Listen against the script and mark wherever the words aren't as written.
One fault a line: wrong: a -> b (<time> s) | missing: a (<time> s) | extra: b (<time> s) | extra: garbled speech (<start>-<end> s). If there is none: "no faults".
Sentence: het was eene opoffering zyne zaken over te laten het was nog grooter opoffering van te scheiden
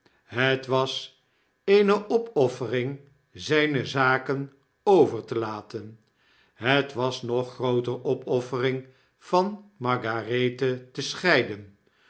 extra: margarethe (9.8 s)